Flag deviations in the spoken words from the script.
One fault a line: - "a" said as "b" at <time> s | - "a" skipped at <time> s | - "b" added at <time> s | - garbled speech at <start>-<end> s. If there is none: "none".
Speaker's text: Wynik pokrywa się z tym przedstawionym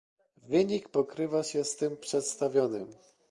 none